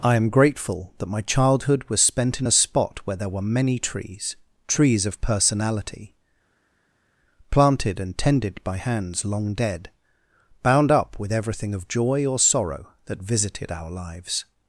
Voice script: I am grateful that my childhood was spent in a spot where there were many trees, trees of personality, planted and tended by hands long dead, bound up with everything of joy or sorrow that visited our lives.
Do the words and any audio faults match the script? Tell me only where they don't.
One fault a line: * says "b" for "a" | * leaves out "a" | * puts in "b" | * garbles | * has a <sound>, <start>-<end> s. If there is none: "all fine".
all fine